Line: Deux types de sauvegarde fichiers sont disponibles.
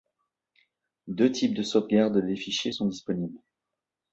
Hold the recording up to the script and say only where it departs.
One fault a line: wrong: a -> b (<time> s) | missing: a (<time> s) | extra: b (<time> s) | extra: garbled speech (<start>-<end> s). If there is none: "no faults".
extra: des (2.2 s)